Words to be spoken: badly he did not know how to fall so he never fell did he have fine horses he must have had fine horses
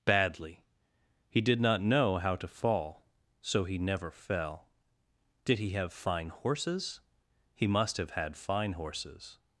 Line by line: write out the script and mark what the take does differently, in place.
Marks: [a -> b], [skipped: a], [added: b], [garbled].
badly he did not know how to fall so he never fell did he have fine horses he must have had fine horses